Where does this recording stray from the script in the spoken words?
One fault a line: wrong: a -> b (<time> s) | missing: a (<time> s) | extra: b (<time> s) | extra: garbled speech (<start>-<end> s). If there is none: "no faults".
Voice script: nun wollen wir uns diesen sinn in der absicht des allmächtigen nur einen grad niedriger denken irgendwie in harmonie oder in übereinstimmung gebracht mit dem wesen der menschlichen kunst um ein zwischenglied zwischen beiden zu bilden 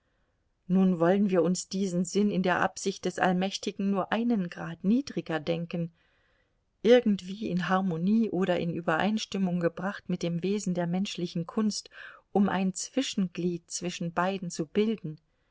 no faults